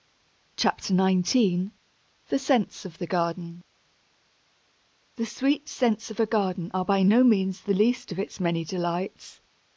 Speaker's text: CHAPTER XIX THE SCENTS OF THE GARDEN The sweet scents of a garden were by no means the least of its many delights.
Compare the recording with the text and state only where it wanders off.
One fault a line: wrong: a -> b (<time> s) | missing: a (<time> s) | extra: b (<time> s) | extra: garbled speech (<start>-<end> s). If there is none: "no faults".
wrong: were -> are (6.7 s)